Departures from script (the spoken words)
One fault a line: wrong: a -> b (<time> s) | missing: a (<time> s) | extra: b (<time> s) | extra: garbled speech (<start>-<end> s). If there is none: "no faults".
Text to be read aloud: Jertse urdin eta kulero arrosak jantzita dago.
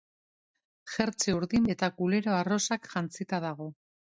no faults